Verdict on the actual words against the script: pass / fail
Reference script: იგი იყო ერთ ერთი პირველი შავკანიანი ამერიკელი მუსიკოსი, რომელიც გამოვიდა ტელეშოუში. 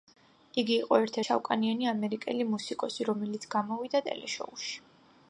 fail